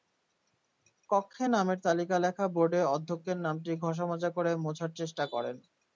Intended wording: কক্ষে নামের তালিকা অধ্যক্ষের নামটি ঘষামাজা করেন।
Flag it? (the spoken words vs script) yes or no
yes